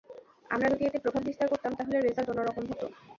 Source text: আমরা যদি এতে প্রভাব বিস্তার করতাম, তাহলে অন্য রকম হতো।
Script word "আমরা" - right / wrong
right